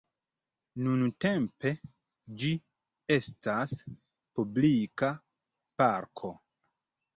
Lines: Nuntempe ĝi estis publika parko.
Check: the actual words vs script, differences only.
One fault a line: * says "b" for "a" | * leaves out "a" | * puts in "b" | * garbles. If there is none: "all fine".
* says "estas" for "estis"